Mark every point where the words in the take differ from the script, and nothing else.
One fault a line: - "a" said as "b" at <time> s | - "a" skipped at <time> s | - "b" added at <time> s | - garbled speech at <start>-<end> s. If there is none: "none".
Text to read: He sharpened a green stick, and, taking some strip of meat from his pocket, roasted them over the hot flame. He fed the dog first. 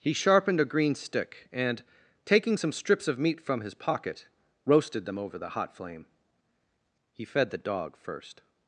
- "strip" said as "strips" at 2.7 s